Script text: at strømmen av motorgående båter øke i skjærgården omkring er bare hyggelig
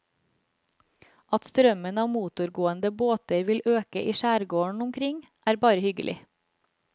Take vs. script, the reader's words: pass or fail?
fail